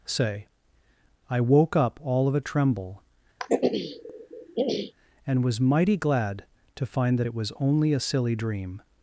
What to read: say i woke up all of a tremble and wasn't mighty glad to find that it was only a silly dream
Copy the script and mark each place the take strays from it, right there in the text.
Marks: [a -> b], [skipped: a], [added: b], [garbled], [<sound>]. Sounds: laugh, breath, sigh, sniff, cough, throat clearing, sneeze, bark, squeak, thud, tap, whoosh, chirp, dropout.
say i woke up all of a tremble [throat clearing] and [wasn't -> was] mighty glad to find that it was only a silly dream